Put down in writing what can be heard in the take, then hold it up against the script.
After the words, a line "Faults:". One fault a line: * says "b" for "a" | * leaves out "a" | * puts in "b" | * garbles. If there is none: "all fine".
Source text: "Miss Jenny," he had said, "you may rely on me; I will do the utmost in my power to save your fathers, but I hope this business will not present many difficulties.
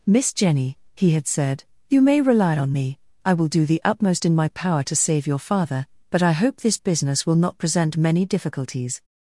"Miss Jenny," he had said, "you may rely on me; I will do the utmost in my power to save your father, but I hope this business will not present many difficulties.
Faults:
* says "father" for "fathers"